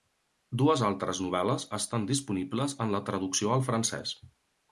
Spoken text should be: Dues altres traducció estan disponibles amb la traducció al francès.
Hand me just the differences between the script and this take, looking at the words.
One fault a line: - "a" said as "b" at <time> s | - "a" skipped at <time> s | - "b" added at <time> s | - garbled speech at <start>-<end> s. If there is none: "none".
- "traducció" said as "novel·les" at 1.2 s
- "amb" said as "en" at 2.9 s